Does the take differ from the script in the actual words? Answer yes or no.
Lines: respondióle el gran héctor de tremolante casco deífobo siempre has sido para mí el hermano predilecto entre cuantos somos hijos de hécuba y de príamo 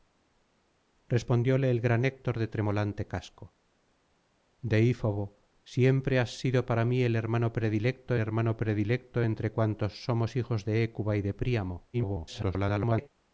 yes